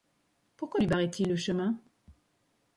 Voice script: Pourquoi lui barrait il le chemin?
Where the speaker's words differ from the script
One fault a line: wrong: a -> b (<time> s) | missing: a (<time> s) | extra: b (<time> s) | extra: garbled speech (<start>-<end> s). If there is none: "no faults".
no faults